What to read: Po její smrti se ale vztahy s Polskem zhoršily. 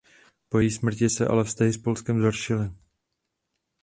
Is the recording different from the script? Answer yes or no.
no